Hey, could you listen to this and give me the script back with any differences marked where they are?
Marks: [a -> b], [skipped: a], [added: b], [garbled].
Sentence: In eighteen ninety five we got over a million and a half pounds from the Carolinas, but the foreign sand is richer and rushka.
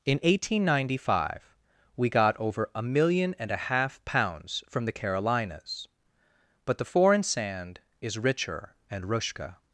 In eighteen ninety five we got over a million and a half pounds from the Carolinas, but the foreign sand is richer and rushka.